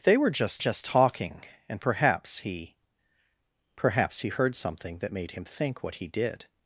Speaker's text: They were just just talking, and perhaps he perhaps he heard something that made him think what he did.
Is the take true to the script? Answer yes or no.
yes